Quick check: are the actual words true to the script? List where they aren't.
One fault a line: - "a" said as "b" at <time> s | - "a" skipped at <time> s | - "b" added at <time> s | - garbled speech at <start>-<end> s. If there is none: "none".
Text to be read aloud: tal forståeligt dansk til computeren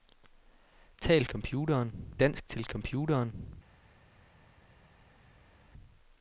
- "forståeligt" said as "computeren" at 1.2 s